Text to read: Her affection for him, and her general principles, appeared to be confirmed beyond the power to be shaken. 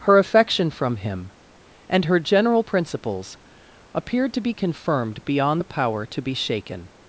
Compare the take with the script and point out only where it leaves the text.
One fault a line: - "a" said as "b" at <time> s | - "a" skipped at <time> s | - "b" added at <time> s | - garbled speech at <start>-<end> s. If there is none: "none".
- "for" said as "from" at 0.7 s